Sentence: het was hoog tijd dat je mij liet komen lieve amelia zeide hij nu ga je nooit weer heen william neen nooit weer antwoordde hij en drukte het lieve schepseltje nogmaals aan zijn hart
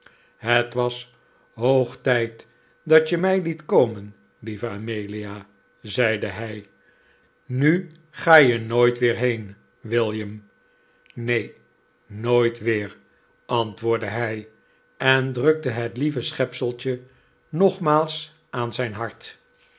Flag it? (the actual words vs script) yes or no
no